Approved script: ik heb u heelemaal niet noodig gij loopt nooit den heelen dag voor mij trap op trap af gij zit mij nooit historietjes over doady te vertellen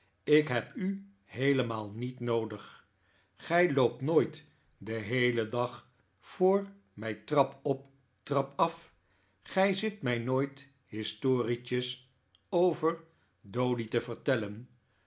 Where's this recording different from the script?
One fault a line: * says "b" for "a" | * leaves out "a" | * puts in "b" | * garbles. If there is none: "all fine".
all fine